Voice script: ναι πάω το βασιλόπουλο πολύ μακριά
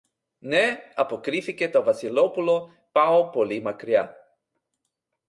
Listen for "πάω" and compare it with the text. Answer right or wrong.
wrong